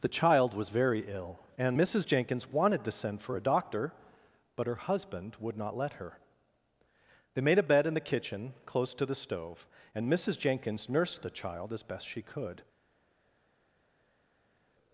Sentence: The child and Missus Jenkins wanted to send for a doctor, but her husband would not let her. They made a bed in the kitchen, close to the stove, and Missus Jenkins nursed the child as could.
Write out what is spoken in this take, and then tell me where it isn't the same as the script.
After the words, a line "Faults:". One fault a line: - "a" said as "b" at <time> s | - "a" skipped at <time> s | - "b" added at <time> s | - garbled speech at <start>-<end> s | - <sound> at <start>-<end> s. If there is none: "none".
The child was very ill, and Missus Jenkins wanted to send for a doctor, but her husband would not let her. They made a bed in the kitchen, close to the stove, and Missus Jenkins nursed the child as best she could.
Faults:
- "was very ill" added at 0.6 s
- "best she" added at 11.8 s